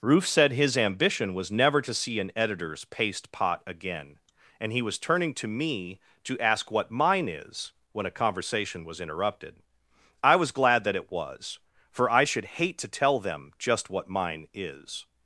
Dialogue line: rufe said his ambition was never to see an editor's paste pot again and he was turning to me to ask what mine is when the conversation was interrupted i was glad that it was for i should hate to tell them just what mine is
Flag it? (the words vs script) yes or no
yes